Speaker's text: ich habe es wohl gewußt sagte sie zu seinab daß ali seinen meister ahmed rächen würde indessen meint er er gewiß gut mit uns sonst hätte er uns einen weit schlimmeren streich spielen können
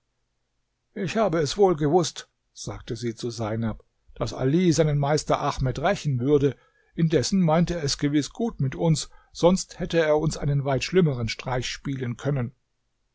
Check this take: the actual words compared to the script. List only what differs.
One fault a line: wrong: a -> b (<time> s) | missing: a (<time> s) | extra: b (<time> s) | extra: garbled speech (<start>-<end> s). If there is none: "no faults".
wrong: er -> es (7.8 s)